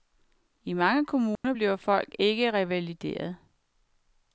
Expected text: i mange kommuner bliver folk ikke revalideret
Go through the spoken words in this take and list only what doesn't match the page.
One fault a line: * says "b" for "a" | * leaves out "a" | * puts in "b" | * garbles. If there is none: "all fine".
all fine